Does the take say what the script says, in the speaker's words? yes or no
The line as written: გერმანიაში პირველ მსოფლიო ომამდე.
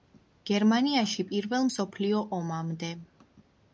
yes